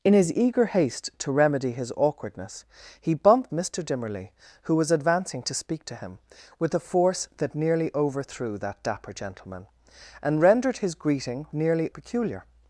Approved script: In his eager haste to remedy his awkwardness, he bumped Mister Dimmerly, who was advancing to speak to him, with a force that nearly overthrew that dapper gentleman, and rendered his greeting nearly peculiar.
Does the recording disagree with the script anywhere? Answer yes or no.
no